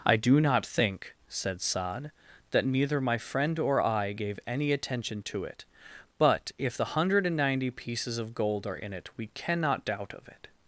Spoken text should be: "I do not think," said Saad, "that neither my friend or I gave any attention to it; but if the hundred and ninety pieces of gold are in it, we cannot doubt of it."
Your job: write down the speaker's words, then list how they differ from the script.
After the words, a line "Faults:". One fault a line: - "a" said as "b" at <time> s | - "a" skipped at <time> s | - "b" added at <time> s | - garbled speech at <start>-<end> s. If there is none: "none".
"I do not think," said Saad, "that neither my friend or I gave any attention to it; but if the hundred and ninety pieces of gold are in it, we cannot doubt of it."
Faults:
none